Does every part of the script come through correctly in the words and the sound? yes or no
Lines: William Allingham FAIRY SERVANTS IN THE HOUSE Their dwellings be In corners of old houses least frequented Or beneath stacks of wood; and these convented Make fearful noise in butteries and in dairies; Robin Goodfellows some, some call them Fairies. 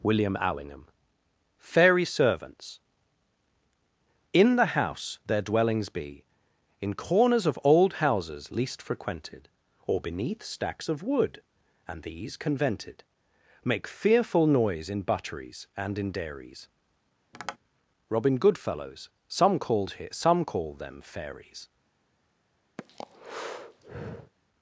no